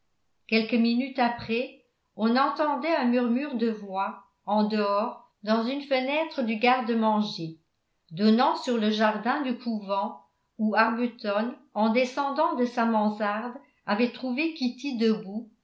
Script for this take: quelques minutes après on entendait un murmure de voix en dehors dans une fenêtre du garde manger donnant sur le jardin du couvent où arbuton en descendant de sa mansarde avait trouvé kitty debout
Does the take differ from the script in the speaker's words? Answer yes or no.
no